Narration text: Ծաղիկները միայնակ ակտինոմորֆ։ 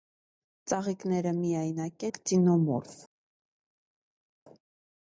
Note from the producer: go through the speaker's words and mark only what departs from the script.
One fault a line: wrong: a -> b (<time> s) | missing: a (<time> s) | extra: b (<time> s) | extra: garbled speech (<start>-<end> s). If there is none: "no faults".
no faults